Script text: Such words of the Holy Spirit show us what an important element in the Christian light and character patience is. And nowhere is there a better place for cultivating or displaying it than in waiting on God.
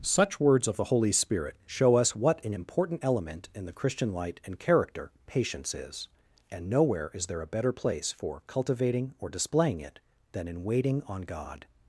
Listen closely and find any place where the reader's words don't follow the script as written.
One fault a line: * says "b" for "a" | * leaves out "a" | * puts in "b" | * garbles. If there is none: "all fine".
all fine